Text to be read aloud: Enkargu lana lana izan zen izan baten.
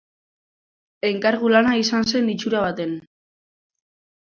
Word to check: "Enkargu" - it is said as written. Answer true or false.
true